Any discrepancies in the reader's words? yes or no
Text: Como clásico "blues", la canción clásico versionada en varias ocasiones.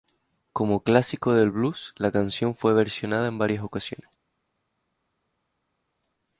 yes